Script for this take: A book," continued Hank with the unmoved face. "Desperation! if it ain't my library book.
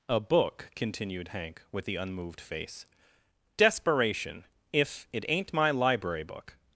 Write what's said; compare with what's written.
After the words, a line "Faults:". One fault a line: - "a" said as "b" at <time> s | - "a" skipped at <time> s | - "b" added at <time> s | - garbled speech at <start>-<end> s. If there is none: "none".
A book," continued Hank with the unmoved face. "Desperation! if it ain't my library book.
Faults:
none